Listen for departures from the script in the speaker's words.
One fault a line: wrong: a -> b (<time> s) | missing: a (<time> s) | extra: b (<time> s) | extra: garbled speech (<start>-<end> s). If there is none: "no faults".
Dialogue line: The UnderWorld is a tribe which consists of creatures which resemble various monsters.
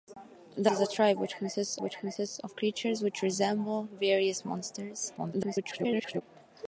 missing: UnderWorld (0.7 s)
extra: which consists (1.8 s)
extra: garbled speech (5.2-6.2 s)